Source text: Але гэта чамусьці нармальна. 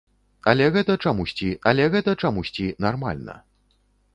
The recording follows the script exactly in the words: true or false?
false